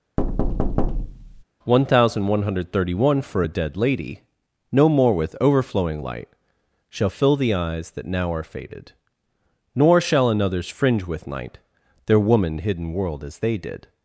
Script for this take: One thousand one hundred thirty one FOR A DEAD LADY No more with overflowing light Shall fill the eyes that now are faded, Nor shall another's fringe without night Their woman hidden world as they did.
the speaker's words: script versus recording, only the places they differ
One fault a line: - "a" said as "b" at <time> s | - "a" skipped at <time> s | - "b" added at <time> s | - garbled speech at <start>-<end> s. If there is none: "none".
- "without" said as "with" at 11.1 s